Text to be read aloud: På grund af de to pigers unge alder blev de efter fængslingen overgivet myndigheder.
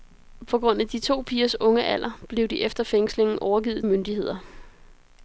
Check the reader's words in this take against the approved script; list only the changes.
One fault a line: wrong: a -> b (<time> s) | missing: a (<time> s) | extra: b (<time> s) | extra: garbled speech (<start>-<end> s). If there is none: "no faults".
no faults